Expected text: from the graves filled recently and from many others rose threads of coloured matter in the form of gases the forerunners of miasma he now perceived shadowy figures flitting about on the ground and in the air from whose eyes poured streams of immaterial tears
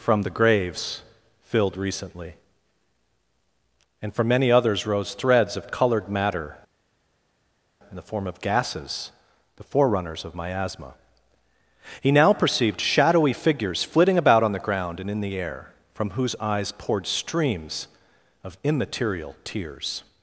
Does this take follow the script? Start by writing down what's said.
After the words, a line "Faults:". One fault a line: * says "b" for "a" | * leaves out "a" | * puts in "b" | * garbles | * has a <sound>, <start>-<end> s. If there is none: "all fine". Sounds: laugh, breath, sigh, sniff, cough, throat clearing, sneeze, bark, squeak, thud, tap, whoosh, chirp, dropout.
from the graves filled recently and from many others rose threads of coloured matter in the form of gases the forerunners of miasma he now perceived shadowy figures flitting about on the ground and in the air from whose eyes poured streams of immaterial tears
Faults:
all fine